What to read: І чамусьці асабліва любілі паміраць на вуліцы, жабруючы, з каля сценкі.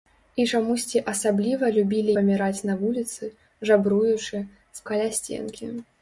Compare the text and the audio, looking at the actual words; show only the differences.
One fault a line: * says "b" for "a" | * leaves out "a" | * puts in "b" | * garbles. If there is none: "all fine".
all fine